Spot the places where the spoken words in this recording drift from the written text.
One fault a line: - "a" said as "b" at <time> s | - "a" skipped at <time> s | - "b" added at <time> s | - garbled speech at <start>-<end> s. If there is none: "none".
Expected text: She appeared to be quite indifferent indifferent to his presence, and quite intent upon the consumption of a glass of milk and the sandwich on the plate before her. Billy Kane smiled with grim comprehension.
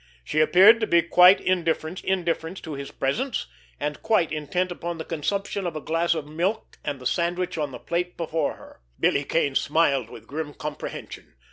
none